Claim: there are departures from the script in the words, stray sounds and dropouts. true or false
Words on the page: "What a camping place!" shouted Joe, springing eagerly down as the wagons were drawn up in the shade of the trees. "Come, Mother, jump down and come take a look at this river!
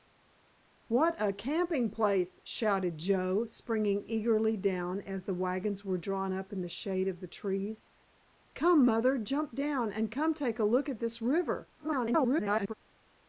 true